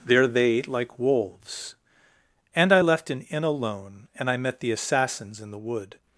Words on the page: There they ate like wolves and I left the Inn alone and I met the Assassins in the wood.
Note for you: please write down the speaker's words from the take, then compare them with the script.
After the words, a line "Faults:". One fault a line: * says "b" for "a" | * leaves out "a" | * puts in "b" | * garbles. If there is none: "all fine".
There they ate like wolves and I left an Inn alone and I met the Assassins in the wood.
Faults:
* says "an" for "the"